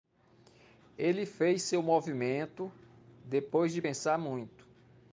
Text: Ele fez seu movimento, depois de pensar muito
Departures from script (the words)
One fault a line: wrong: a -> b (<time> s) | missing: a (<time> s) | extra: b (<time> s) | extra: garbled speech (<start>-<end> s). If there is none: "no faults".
no faults